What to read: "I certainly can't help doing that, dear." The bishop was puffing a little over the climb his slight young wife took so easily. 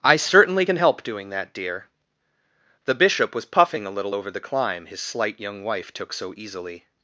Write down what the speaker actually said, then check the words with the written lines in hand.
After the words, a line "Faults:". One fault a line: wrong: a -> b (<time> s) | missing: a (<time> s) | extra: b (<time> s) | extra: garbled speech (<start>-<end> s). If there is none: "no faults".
"I certainly can help doing that, dear." The bishop was puffing a little over the climb his slight young wife took so easily.
Faults:
wrong: can't -> can (0.6 s)